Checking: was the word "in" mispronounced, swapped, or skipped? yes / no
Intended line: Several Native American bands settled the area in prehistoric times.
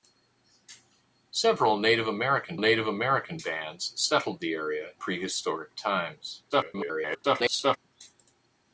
yes